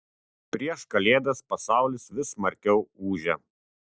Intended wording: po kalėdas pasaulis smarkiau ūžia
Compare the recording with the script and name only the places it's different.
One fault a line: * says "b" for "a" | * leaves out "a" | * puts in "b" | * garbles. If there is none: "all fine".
* says "prieš" for "po"
* puts in "vis"